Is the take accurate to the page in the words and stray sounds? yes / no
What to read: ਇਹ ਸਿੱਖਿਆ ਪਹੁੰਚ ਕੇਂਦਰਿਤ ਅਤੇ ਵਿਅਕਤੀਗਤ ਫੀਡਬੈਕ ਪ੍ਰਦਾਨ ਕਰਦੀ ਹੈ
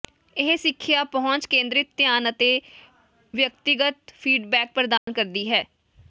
no